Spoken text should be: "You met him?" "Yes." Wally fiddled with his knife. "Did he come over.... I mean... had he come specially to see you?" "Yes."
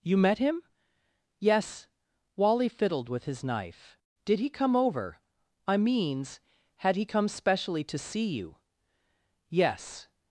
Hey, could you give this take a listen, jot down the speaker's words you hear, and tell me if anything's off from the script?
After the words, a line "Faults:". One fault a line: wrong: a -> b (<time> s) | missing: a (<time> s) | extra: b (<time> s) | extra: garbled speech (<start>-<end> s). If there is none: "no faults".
"You met him?" "Yes." Wally fiddled with his knife. "Did he come over.... I means... had he come specially to see you?" "Yes."
Faults:
wrong: mean -> means (5.8 s)